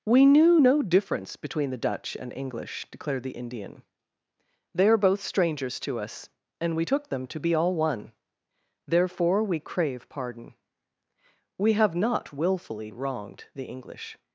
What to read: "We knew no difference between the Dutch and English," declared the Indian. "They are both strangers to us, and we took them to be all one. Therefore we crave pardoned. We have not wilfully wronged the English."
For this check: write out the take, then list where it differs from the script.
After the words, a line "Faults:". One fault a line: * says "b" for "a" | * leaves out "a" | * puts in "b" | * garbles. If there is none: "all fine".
"We knew no difference between the Dutch and English," declared the Indian. "They are both strangers to us, and we took them to be all one. Therefore we crave pardon. We have not wilfully wronged the English."
Faults:
* says "pardon" for "pardoned"